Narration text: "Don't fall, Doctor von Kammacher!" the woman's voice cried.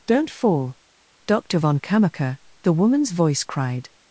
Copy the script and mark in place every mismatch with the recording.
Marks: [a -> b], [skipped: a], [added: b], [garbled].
"Don't fall, Doctor von Kammacher!" the woman's voice cried.